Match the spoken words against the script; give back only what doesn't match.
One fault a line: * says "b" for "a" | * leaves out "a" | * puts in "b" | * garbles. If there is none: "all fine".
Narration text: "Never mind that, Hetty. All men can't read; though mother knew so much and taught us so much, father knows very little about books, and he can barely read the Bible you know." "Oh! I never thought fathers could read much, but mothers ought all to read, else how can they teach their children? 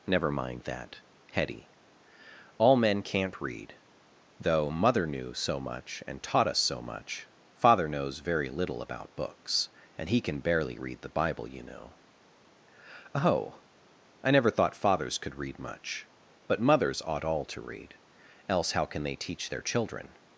all fine